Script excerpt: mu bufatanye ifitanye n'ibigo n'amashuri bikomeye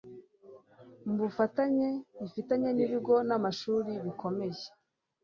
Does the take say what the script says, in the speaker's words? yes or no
yes